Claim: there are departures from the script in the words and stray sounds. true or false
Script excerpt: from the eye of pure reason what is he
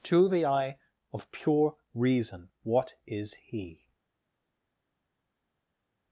true